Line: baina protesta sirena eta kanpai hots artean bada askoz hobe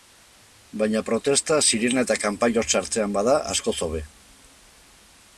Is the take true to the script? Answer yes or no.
yes